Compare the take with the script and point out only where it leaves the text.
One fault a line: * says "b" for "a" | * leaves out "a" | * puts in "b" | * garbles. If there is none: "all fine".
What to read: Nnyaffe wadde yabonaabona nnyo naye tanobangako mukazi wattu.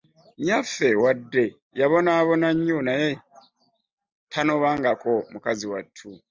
all fine